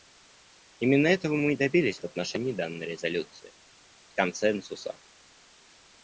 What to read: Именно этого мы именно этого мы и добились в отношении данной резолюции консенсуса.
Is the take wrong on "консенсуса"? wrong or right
right